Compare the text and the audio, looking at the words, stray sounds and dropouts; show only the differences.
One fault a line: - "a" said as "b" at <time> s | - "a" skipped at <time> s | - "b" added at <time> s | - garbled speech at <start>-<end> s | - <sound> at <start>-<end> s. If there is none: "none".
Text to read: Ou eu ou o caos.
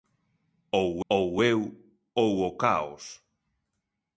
- "ou" added at 1.1 s